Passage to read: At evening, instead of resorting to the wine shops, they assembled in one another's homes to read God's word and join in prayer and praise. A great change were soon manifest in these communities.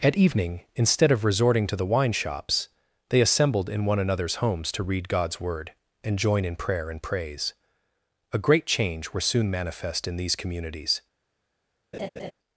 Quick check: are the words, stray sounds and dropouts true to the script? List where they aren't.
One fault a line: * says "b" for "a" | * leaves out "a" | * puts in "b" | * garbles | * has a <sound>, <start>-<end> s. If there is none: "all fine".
* has a laugh, 11.9-12.3 s